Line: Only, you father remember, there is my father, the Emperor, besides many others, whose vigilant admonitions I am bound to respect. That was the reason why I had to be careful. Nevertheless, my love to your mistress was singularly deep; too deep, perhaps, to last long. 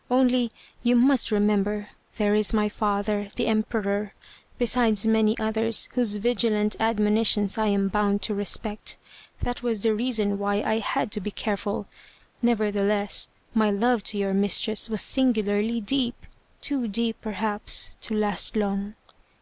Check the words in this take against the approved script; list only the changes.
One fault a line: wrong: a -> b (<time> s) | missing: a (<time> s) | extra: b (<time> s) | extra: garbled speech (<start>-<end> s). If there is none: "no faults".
wrong: father -> must (0.9 s)